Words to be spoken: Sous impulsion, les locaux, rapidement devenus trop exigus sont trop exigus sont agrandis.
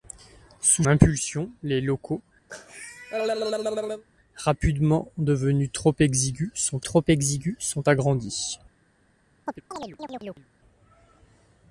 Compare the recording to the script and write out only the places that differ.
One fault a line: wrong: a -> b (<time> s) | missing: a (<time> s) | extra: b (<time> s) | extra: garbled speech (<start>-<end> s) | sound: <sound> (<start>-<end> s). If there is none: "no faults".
sound: cough (2.5-4.0 s)
sound: chirp (9.5-10.5 s)